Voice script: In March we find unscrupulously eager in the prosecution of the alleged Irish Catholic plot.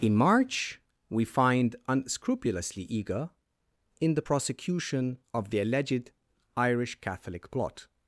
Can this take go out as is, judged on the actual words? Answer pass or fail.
pass